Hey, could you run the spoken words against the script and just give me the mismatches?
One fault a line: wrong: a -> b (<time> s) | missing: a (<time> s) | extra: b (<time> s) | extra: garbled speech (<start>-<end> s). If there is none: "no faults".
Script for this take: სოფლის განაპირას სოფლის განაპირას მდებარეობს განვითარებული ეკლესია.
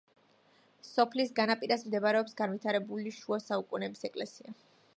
wrong: სოფლის განაპირას მდებარეობს განვითარებული -> მდებარეობს განვითარებული შუა საუკუნეების (1.9 s)